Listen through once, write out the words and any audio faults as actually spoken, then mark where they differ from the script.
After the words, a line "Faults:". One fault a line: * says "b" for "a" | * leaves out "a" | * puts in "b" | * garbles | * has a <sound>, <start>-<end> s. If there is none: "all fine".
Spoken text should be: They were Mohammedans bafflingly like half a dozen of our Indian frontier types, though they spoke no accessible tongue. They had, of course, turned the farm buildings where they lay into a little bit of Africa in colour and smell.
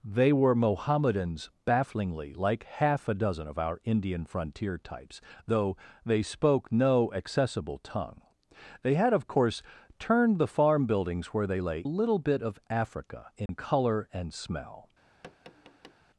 They were Mohammedans bafflingly like half a dozen of our Indian frontier types, though they spoke no accessible tongue. They had, of course, turned the farm buildings where they lay a little bit of Africa in colour and smell.
Faults:
* leaves out "into"
* has a dropout, 13.5-13.5 s
* has a tap, 15.2-15.9 s